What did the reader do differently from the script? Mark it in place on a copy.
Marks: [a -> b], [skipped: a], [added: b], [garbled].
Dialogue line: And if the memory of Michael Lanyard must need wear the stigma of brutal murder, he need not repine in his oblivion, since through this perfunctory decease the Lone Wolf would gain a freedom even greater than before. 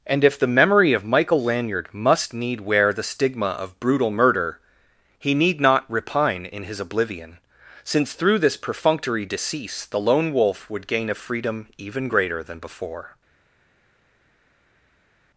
And if the memory of Michael Lanyard must need wear the stigma of brutal murder, he need not repine in his oblivion, since through this perfunctory decease the Lone Wolf would gain a freedom even greater than before.